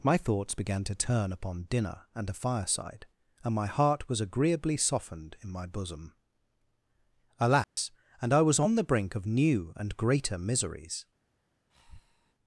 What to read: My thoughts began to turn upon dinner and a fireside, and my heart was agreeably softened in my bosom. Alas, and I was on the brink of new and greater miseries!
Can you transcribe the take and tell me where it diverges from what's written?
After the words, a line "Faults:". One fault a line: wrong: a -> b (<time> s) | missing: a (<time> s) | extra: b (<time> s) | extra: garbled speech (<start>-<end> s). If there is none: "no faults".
My thoughts began to turn upon dinner and a fireside, and my heart was agreeably softened in my bosom. Alas, and I was on the brink of new and greater miseries!
Faults:
no faults